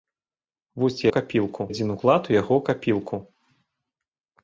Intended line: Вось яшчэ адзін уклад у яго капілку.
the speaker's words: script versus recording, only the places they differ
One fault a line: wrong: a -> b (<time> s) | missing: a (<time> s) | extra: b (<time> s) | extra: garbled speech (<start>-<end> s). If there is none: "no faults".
wrong: яшчэ -> капілку (1.2 s)